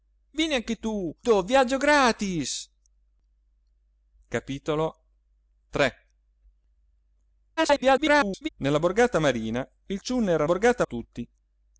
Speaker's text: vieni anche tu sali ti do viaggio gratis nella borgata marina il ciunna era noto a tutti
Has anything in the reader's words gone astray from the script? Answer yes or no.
yes